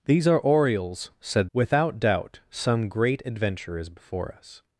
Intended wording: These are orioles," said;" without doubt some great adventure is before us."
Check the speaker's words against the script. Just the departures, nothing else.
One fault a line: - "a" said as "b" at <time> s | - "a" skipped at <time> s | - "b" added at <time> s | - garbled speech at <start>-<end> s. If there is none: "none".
none